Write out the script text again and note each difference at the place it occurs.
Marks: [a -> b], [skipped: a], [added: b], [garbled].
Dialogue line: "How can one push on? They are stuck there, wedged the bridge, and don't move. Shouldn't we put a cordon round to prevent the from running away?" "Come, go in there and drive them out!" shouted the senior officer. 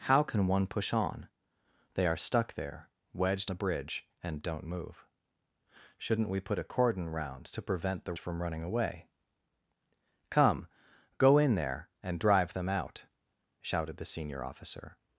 "How can one push on? They are stuck there, wedged the bridge, and don't move. Shouldn't we put a cordon round to prevent the from running away?" "Come, go in there and drive them out!" shouted the senior officer.